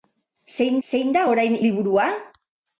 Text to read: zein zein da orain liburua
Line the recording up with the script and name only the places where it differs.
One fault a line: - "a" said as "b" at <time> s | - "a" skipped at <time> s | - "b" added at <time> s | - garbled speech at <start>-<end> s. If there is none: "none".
none